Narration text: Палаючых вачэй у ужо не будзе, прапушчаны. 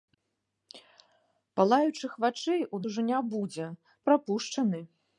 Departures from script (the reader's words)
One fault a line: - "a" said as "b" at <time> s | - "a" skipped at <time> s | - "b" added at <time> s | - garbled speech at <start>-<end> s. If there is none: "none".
none